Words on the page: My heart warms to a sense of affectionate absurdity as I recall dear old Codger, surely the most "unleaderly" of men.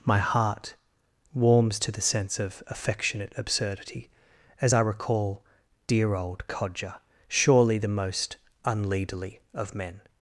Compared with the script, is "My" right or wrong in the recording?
right